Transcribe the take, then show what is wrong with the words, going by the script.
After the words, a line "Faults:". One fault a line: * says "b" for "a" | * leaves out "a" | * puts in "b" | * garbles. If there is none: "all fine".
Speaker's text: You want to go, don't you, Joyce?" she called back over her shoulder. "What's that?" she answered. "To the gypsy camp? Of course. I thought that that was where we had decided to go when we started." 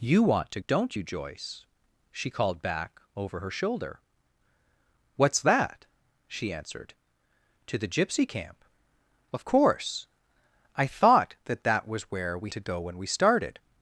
You want to don't you, Joyce?" she called back over her shoulder. "What's that?" she answered. "To the gypsy camp? Of course. I thought that that was where we to go when we started."
Faults:
* leaves out "go"
* leaves out "had decided"